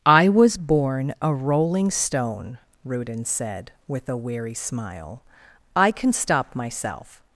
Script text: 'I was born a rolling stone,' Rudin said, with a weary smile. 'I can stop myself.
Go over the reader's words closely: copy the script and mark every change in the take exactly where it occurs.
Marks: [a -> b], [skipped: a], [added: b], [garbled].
'I was born a rolling stone,' Rudin said, with a weary smile. 'I can stop myself.